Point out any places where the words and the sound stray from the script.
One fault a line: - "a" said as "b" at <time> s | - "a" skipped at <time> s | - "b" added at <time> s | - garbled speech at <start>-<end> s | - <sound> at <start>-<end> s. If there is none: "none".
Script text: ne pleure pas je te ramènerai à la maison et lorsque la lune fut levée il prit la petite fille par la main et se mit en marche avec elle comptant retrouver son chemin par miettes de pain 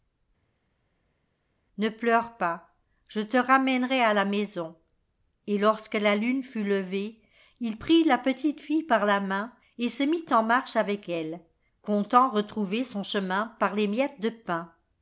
- "les" added at 13.7 s